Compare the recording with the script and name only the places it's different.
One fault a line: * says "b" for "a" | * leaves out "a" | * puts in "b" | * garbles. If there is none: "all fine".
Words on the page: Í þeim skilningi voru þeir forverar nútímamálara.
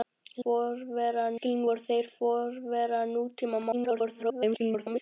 * says "forverar" for "þeim"
* garbles